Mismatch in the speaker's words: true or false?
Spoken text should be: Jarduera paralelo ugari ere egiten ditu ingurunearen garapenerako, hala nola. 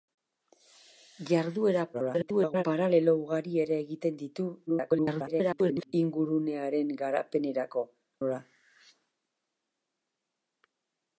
true